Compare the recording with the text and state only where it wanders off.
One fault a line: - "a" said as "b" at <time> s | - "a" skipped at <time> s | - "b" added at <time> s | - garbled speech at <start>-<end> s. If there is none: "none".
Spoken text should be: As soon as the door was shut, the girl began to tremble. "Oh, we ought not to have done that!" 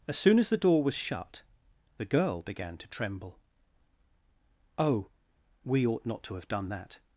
none